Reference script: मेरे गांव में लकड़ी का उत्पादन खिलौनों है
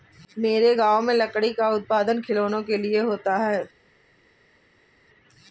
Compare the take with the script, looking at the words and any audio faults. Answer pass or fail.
fail